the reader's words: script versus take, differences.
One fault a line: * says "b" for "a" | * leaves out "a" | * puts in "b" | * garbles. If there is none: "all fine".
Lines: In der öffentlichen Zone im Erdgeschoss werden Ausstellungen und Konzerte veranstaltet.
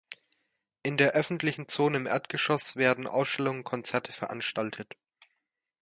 all fine